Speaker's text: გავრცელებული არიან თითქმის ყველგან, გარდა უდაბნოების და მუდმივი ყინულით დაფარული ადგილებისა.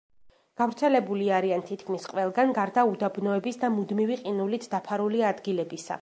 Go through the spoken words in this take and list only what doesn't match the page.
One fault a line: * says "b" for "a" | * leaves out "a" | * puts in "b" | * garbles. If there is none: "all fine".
all fine